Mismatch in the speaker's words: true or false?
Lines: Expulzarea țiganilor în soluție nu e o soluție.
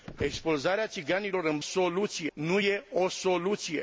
false